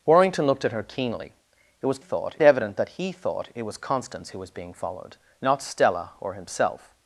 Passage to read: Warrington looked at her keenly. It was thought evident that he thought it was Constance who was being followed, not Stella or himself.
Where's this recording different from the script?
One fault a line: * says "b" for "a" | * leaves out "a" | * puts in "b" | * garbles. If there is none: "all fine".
all fine